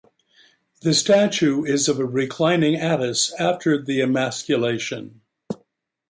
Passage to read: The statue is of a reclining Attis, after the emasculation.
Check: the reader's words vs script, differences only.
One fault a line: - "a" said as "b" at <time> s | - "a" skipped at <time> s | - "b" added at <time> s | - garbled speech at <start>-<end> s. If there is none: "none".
none